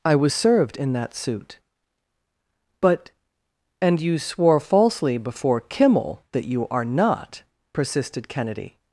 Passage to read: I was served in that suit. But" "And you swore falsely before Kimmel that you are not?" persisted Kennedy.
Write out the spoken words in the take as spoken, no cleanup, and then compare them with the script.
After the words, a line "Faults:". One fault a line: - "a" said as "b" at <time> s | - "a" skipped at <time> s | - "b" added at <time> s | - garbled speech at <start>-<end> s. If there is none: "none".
I was served in that suit. But" "And you swore falsely before Kimmel that you are not?" persisted Kennedy.
Faults:
none